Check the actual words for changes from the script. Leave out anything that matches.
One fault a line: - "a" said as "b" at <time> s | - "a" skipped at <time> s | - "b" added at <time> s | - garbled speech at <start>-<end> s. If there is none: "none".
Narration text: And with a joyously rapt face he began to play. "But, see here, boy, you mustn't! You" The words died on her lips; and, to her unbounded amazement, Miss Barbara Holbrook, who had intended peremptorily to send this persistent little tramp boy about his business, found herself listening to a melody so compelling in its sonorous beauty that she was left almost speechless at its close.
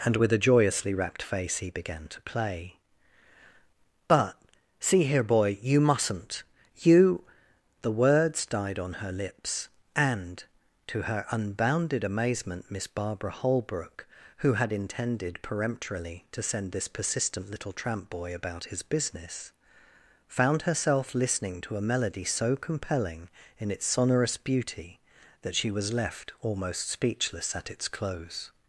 none